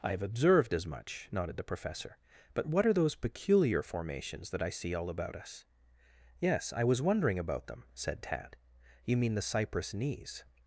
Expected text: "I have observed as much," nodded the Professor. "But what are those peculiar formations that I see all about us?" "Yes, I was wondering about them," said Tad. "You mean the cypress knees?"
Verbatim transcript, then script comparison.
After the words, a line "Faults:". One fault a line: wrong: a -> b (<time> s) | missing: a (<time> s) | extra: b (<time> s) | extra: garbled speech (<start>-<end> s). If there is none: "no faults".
"I have observed as much," nodded the Professor. "But what are those peculiar formations that I see all about us?" "Yes, I was wondering about them," said Tad. "You mean the cypress knees?"
Faults:
no faults